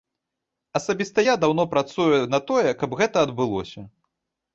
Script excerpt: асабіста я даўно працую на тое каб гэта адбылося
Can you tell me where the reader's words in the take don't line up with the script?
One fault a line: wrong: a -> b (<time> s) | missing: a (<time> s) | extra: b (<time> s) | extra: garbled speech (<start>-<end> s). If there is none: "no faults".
no faults